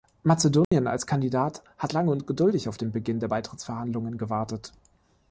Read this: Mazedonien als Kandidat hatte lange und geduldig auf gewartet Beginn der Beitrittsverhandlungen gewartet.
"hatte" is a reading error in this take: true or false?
true